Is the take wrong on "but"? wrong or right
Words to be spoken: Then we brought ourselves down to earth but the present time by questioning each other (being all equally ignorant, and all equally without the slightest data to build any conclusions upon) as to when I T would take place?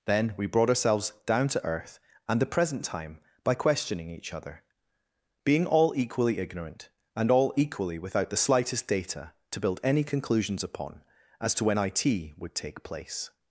wrong